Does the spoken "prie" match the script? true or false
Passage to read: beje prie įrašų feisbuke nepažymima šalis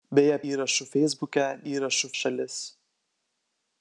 false